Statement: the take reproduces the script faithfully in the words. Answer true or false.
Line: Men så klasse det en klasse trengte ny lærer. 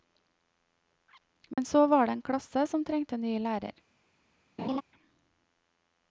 false